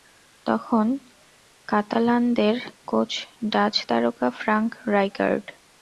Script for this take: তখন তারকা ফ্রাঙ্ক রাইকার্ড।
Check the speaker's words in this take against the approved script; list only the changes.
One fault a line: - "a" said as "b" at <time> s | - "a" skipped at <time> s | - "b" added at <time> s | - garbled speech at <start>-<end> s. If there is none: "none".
- "কাতালানদের কোচ ডাচ" added at 1.7 s